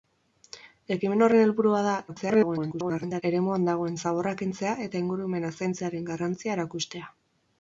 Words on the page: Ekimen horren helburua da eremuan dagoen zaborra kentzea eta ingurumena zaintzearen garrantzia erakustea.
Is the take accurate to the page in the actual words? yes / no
no